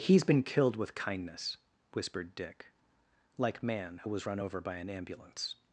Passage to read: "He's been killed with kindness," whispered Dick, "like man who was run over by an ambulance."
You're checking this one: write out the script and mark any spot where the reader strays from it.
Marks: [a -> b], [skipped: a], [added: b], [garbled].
"He's been killed with kindness," whispered Dick, "like man who was run over by an ambulance."